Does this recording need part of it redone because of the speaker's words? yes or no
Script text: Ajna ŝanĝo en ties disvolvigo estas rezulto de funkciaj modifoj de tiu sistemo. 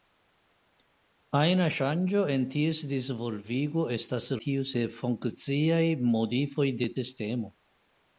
yes